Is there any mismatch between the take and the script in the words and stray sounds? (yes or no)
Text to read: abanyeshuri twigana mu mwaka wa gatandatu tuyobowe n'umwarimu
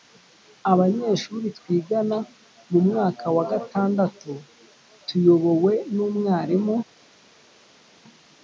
no